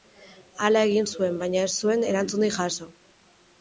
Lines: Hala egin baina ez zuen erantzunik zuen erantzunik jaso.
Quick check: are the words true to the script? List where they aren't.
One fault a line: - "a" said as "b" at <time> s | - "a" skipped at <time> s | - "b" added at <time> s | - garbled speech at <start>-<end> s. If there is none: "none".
- "zuen" added at 1.1 s
- "zuen erantzunik" skipped at 2.6 s